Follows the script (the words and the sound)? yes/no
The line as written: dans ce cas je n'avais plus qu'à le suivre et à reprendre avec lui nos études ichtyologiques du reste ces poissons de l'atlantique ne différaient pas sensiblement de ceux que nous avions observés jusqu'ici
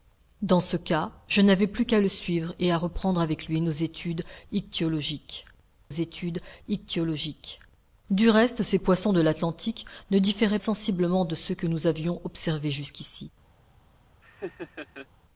no